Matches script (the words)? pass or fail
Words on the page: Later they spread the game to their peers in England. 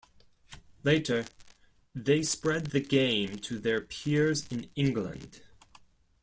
pass